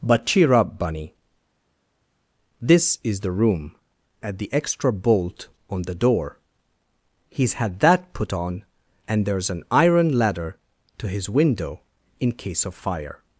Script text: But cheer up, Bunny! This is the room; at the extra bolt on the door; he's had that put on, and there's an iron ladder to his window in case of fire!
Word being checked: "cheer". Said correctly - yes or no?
yes